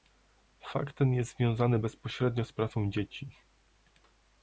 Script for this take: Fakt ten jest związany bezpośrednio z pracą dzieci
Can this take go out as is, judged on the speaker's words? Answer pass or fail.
pass